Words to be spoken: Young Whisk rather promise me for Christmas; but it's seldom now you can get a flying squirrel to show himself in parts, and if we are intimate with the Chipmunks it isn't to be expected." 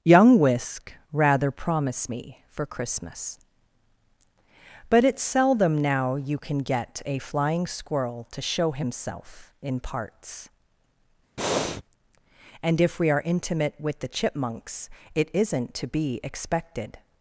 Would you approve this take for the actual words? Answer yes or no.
yes